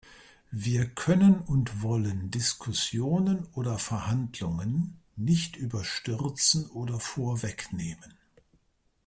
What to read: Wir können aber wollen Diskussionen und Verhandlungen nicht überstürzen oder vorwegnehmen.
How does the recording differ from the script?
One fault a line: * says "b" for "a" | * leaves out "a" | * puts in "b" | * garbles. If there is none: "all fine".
* says "und" for "aber"
* says "oder" for "und"